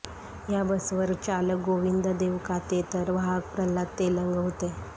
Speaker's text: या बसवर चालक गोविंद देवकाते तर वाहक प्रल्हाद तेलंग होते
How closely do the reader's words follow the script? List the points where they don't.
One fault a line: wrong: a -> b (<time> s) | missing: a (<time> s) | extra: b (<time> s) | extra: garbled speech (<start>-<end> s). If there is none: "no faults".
no faults